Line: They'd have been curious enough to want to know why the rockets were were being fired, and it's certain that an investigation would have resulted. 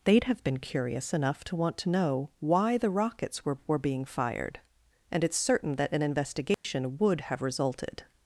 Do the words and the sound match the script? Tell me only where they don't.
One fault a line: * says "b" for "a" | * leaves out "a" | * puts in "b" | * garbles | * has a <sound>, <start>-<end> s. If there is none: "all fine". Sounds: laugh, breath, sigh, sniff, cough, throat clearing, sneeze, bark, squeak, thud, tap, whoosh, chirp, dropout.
* has a dropout, 6.5-6.6 s